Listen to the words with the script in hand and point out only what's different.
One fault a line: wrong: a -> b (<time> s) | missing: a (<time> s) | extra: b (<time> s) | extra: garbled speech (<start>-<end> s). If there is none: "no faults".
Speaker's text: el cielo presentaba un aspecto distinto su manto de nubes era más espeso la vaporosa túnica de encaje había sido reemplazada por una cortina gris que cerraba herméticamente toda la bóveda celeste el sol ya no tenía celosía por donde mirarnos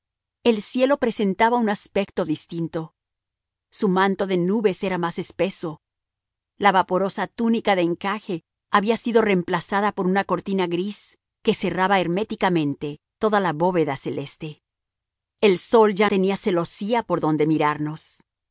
missing: no (16.1 s)